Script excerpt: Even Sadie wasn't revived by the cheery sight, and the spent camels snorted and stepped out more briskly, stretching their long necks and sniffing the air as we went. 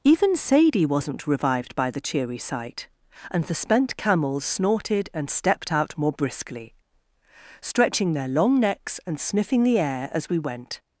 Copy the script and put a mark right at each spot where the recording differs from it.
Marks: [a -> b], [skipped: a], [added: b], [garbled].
Even Sadie wasn't revived by the cheery sight, and the spent camels snorted and stepped out more briskly, stretching their long necks and sniffing the air as we went.